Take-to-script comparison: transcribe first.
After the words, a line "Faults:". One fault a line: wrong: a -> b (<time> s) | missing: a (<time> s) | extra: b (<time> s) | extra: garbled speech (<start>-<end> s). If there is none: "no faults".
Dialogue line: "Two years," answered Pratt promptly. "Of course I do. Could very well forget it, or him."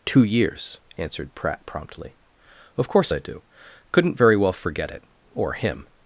"Two years," answered Pratt promptly. "Of course I do. Couldn't very well forget it, or him."
Faults:
wrong: Could -> Couldn't (3.9 s)